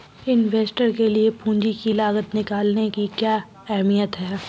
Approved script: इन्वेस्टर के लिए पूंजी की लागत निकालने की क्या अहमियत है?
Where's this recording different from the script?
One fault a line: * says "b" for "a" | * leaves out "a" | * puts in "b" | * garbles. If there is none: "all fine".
all fine